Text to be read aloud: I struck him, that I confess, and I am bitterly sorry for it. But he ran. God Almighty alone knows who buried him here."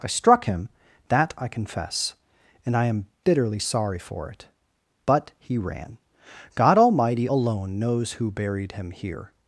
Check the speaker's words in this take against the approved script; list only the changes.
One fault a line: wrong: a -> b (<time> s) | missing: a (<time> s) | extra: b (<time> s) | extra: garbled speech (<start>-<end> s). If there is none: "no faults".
no faults